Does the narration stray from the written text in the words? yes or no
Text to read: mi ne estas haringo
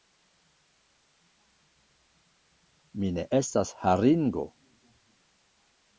no